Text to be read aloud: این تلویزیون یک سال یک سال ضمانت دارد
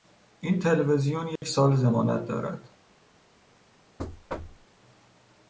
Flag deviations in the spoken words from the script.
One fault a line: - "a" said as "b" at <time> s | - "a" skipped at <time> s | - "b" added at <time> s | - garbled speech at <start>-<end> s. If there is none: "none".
- "یک سال" skipped at 1.8 s